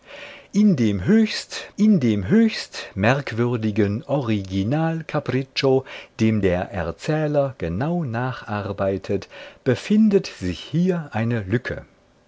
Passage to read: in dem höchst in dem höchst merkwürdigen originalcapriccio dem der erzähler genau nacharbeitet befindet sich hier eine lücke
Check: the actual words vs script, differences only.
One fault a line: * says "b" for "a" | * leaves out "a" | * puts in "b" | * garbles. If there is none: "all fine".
all fine